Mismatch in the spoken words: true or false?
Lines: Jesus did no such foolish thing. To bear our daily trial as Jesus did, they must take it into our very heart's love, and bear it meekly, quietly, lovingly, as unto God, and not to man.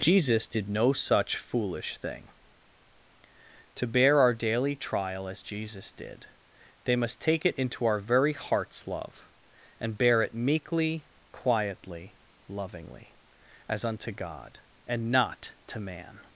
false